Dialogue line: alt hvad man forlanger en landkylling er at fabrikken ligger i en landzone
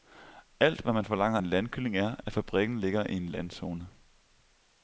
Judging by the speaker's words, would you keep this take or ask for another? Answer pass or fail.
pass